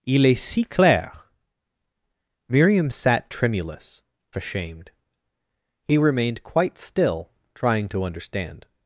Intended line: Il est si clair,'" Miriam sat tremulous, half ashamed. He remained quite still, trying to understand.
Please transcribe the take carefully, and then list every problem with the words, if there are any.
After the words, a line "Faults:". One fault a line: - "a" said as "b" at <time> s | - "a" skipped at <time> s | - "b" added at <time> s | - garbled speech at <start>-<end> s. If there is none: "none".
Il est si clair,'" Miriam sat tremulous, ashamed. He remained quite still, trying to understand.
Faults:
- "half" skipped at 4.0 s